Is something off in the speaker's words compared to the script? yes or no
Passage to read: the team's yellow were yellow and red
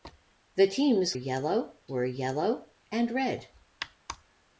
no